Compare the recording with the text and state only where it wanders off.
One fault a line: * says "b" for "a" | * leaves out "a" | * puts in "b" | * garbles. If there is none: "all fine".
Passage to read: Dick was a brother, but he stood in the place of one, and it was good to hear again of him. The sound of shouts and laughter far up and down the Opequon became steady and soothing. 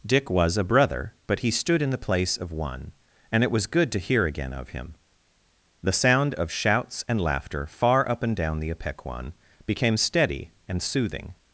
all fine